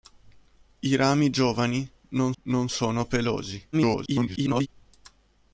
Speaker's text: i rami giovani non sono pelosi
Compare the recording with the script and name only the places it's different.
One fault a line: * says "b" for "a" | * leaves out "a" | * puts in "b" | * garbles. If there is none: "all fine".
* puts in "non"
* garbles